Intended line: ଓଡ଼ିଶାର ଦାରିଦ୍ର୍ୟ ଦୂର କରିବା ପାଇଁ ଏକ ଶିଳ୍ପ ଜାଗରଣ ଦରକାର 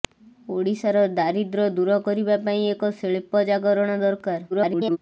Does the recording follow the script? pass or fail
fail